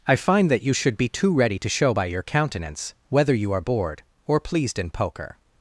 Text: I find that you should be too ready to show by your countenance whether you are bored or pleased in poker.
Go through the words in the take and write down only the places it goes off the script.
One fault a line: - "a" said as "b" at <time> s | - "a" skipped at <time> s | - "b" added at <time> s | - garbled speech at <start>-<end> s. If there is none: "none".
none